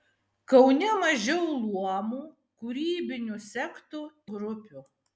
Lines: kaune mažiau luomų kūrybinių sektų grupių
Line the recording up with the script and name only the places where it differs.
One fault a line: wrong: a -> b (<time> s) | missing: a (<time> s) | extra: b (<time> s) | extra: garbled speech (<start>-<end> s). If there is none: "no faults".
no faults